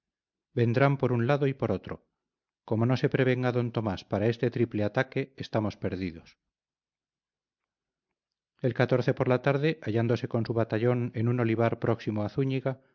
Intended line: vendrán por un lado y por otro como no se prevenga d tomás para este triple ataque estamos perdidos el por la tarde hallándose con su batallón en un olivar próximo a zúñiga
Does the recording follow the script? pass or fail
pass